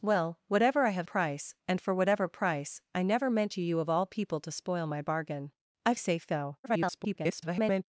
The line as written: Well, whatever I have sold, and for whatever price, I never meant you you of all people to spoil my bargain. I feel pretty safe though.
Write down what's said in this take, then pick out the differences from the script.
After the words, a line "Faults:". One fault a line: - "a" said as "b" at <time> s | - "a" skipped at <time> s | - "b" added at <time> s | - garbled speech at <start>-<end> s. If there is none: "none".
Well, whatever I have price, and for whatever price, I never meant you you of all people to spoil my bargain. I safe though. [garbled]
Faults:
- "sold" said as "price" at 1.0 s
- "feel pretty" skipped at 5.9 s
- garbled speech at 6.6-7.8 s